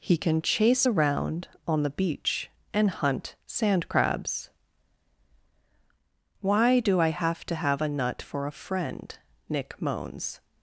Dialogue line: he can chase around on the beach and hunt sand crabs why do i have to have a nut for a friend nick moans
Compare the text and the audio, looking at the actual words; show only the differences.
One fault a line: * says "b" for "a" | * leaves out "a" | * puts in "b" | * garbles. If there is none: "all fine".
all fine